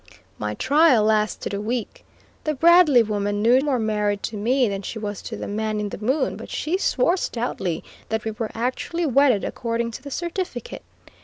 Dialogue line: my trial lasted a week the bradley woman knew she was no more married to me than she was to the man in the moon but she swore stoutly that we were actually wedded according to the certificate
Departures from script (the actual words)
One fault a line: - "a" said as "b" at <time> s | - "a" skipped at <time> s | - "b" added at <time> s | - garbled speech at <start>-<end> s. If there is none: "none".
- "she was no" skipped at 3.6 s